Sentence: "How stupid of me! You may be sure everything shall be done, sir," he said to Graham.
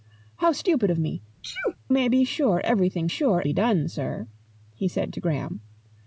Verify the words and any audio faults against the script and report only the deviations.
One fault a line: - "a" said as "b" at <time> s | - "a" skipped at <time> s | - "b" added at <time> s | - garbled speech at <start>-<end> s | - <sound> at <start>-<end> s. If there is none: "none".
- "You" skipped at 1.2 s
- sneeze at 1.4-1.8 s
- "shall" said as "sure" at 3.0 s